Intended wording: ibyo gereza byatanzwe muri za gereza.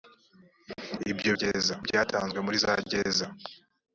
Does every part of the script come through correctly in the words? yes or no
yes